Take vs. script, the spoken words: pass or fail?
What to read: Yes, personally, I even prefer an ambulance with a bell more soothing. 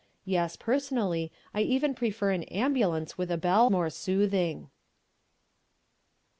pass